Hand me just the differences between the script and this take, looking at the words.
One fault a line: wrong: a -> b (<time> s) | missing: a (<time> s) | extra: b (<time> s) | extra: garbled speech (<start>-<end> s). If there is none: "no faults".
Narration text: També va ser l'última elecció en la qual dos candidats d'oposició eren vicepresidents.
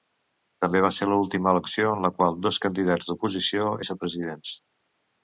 missing: eren (3.7 s)